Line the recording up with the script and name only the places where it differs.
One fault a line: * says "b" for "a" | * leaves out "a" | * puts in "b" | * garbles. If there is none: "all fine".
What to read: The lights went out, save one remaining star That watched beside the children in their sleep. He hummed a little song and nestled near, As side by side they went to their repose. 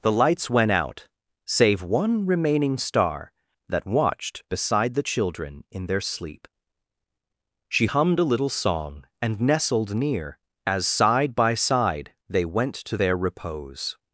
* says "She" for "He"